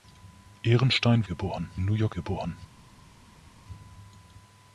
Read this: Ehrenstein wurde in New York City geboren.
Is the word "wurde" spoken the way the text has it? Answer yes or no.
no